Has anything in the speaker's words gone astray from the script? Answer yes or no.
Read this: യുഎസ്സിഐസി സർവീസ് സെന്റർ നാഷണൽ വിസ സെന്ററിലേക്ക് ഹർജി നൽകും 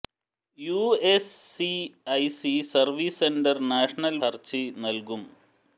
yes